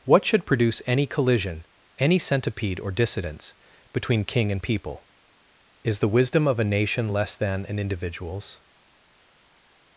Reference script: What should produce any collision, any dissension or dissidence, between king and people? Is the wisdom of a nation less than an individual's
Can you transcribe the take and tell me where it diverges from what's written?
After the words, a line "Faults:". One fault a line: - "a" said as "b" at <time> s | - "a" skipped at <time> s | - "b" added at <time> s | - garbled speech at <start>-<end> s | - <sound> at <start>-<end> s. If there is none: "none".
What should produce any collision, any centipede or dissidence, between king and people? Is the wisdom of a nation less than an individual's
Faults:
- "dissension" said as "centipede" at 2.2 s